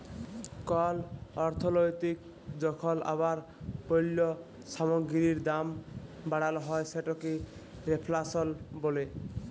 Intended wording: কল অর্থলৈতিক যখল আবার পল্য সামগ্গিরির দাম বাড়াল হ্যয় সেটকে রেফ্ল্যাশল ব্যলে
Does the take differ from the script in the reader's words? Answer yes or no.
no